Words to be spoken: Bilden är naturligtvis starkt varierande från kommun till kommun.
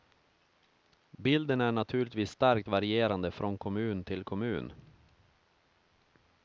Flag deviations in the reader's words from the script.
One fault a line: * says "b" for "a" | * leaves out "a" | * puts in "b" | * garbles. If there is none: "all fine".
all fine